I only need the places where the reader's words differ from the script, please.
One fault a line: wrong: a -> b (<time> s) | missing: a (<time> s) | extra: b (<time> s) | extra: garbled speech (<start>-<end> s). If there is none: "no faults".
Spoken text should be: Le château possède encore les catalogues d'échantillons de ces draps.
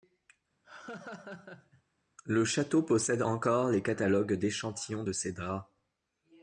no faults